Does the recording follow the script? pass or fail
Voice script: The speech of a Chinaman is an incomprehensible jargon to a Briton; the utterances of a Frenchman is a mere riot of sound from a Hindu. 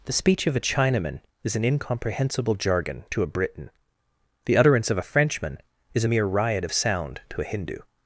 fail